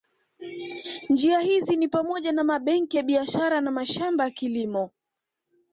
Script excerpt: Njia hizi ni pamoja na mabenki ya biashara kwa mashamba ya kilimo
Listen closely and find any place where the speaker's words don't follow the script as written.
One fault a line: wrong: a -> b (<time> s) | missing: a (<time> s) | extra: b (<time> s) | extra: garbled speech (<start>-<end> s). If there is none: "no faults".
wrong: kwa -> na (3.6 s)